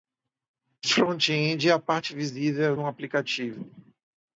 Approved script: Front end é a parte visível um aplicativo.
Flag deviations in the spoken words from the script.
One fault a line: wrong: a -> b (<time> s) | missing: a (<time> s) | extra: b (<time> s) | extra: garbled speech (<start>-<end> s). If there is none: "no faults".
no faults